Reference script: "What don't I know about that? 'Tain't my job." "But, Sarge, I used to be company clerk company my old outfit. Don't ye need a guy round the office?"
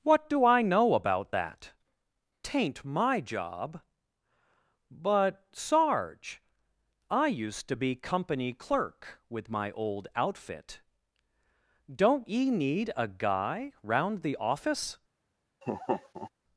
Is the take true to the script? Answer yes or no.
no